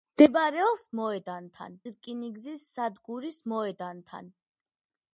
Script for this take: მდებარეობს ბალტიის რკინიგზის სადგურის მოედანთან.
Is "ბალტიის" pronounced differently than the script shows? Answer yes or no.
yes